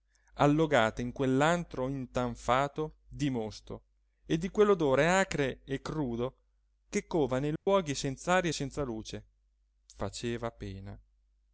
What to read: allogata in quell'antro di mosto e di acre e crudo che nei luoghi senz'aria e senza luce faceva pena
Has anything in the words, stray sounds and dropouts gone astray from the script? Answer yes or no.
yes